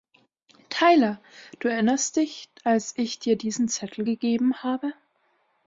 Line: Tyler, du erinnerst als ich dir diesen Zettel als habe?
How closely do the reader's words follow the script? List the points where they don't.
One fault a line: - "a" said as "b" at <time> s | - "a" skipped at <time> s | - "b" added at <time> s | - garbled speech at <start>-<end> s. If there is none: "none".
- "dich" added at 2.1 s
- "als" said as "gegeben" at 4.0 s